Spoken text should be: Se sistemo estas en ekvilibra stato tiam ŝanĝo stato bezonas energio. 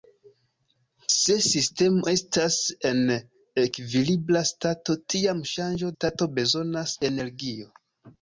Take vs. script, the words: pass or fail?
pass